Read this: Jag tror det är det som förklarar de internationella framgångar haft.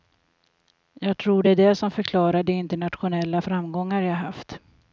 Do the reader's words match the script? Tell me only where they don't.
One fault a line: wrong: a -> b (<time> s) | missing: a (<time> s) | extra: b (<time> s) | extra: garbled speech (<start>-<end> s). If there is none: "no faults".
extra: jag (4.0 s)